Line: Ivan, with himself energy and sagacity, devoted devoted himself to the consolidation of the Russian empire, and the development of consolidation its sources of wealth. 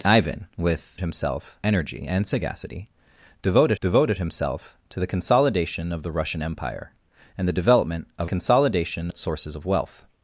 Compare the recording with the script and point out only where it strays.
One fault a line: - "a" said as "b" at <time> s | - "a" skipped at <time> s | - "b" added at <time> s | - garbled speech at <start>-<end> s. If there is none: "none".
none